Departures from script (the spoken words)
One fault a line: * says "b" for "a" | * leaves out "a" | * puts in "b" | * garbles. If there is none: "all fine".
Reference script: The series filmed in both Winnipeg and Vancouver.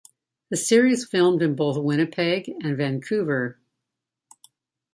all fine